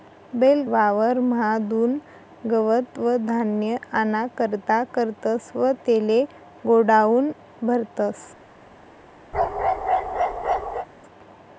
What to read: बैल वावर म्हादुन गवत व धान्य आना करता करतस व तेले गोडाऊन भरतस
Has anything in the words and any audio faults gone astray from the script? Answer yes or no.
yes